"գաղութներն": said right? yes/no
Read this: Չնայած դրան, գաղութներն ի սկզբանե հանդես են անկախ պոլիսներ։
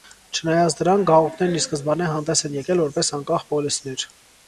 yes